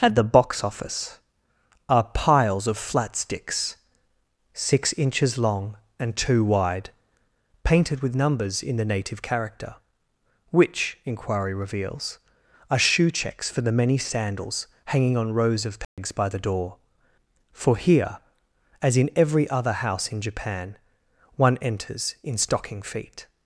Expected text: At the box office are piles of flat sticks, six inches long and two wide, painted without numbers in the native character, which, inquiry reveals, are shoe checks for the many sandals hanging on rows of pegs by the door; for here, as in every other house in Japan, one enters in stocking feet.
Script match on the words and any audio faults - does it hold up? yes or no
no